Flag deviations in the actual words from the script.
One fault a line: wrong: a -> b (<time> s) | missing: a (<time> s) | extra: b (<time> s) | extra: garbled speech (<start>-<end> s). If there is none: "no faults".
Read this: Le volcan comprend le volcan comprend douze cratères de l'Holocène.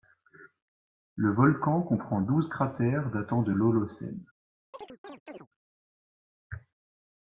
missing: le volcan comprend (2.2 s)
extra: datant (3.1 s)